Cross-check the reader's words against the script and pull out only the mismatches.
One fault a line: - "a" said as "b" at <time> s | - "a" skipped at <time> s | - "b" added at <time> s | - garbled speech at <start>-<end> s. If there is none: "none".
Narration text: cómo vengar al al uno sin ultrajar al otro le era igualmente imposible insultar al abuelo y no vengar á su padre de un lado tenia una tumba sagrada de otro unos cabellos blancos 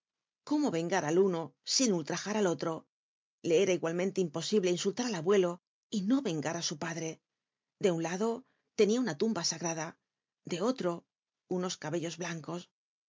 - "al" skipped at 1.2 s